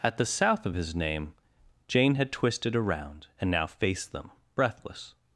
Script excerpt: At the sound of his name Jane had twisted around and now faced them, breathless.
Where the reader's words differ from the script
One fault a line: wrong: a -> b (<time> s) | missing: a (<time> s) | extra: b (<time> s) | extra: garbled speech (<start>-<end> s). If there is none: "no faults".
wrong: sound -> south (0.2 s)